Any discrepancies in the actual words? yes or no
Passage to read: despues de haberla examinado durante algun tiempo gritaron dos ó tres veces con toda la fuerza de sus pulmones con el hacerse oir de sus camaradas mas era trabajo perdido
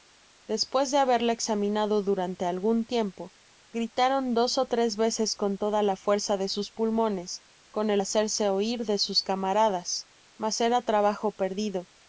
no